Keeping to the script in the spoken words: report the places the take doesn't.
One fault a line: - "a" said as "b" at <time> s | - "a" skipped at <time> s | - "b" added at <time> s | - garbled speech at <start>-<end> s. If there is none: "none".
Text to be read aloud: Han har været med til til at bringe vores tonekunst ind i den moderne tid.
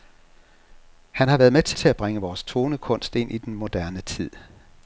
none